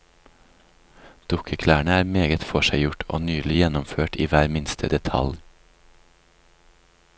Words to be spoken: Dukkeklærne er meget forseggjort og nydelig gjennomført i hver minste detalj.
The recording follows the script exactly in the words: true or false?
true